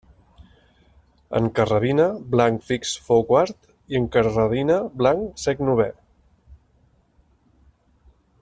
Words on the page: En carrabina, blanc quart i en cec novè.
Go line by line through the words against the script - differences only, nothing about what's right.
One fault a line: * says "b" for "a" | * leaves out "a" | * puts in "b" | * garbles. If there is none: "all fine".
* puts in "fix fou"
* puts in "carrabina blanc"